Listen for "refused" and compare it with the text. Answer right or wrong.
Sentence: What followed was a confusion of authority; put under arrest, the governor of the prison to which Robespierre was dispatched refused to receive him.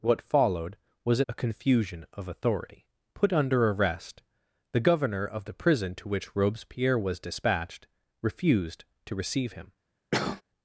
right